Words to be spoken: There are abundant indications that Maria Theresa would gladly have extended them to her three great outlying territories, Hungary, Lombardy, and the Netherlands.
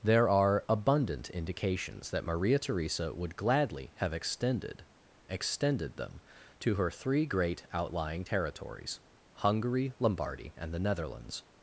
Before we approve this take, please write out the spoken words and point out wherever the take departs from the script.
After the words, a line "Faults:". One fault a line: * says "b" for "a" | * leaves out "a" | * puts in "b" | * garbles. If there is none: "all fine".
There are abundant indications that Maria Theresa would gladly have extended extended them to her three great outlying territories, Hungary, Lombardy, and the Netherlands.
Faults:
* puts in "extended"